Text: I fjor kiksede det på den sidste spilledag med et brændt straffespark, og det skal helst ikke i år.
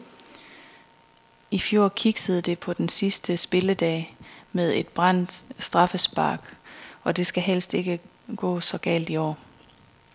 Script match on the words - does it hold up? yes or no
no